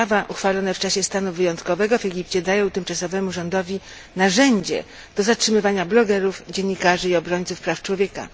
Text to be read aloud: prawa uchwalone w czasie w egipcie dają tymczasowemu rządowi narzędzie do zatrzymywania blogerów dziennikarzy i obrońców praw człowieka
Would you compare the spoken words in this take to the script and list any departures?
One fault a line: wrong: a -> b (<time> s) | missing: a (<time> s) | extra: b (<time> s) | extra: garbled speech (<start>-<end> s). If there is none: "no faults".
extra: stanu wyjątkowego (1.0 s)